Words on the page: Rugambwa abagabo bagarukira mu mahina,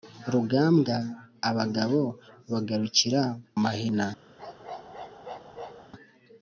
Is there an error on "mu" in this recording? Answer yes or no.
yes